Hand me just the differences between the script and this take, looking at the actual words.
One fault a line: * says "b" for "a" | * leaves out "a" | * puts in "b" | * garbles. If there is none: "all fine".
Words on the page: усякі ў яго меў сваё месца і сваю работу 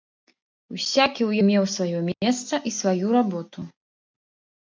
* leaves out "яго"